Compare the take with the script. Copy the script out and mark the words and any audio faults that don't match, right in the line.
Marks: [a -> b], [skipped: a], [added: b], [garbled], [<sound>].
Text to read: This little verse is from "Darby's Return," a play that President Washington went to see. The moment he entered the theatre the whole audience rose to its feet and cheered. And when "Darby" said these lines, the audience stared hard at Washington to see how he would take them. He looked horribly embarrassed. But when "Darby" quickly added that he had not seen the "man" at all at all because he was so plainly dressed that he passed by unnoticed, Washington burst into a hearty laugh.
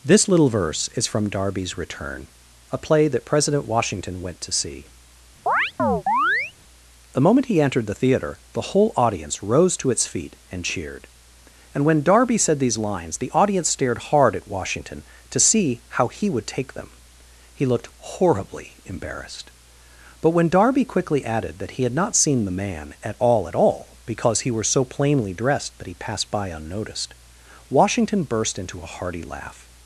This little verse is from "Darby's Return," a play that President Washington went to see. [chirp] The moment he entered the theatre the whole audience rose to its feet and cheered. And when "Darby" said these lines, the audience stared hard at Washington to see how he would take them. He looked horribly embarrassed. But when "Darby" quickly added that he had not seen the "man" at all at all because he [was -> were] so plainly dressed that he passed by unnoticed, Washington burst into a hearty laugh.